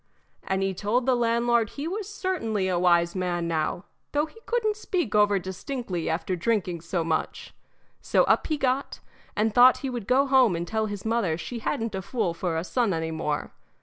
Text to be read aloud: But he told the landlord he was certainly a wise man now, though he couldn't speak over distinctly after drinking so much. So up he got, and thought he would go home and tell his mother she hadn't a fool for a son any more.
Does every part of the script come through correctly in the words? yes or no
no